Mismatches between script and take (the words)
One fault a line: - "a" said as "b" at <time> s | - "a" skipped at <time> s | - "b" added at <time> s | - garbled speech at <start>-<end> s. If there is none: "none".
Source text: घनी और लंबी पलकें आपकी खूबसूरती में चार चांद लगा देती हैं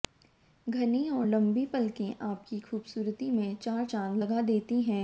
none